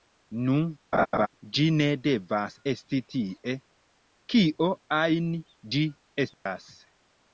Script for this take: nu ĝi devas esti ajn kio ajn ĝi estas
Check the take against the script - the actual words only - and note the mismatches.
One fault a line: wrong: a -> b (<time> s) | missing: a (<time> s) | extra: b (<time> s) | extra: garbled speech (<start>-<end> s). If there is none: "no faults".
extra: ne (1.7 s)
wrong: ajn -> tie (3.1 s)